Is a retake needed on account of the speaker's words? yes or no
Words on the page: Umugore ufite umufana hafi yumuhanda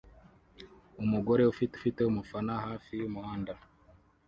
yes